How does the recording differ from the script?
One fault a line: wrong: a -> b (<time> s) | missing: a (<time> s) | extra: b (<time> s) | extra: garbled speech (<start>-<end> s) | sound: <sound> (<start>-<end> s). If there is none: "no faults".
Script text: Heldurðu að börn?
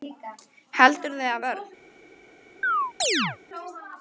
sound: chirp (2.6-3.4 s)